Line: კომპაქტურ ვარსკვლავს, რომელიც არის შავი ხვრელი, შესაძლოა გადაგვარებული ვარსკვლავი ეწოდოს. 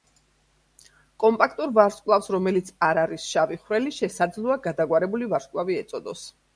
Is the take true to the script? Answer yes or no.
no